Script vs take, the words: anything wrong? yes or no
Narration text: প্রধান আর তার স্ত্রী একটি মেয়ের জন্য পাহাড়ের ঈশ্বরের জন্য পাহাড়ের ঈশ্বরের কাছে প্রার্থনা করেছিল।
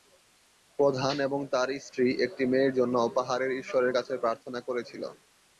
yes